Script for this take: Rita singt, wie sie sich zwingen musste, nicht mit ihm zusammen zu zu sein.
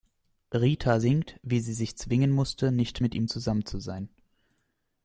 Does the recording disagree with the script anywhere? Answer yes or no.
yes